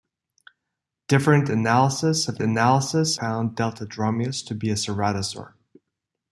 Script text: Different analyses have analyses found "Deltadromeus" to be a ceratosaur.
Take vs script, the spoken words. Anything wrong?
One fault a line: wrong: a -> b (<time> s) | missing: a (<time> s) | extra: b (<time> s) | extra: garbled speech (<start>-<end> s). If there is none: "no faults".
no faults